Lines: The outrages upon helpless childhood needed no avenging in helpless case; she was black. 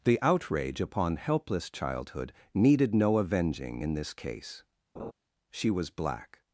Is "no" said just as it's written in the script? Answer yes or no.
yes